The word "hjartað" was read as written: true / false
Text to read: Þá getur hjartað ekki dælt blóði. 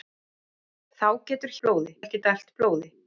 false